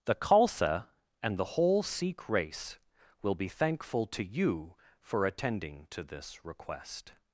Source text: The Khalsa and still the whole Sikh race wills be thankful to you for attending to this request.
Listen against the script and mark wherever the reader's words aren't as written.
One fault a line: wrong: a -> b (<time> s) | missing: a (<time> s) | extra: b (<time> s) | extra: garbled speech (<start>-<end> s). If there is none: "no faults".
missing: still (1.4 s)
wrong: wills -> will (3.2 s)